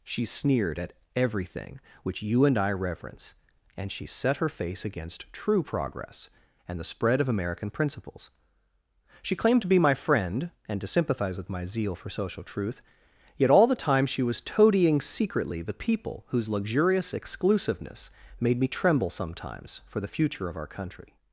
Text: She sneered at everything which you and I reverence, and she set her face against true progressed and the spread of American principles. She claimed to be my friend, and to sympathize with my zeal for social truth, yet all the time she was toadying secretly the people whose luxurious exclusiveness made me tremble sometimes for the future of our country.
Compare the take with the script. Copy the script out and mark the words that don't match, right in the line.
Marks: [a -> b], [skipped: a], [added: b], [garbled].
She sneered at everything which you and I reverence, and she set her face against true [progressed -> progress] and the spread of American principles. She claimed to be my friend, and to sympathize with my zeal for social truth, yet all the time she was toadying secretly the people whose luxurious exclusiveness made me tremble sometimes for the future of our country.